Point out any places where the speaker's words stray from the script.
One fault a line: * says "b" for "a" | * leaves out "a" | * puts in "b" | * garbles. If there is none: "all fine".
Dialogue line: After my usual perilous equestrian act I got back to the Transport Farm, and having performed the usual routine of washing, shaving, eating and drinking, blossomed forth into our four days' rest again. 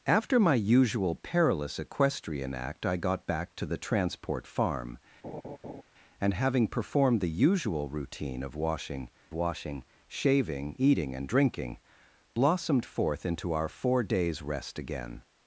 * puts in "washing"